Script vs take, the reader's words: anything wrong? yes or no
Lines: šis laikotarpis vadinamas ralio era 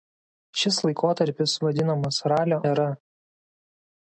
no